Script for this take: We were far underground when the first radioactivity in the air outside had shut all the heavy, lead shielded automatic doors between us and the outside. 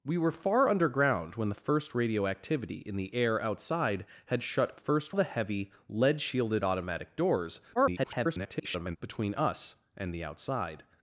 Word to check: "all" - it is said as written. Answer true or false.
false